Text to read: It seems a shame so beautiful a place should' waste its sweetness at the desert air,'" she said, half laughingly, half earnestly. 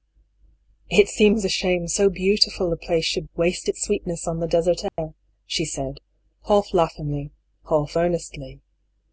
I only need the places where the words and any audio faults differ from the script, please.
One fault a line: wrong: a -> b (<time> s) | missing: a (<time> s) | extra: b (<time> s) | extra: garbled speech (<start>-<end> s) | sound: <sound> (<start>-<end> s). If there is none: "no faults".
wrong: at -> on (4.3 s)
sound: dropout (4.9-5.0 s)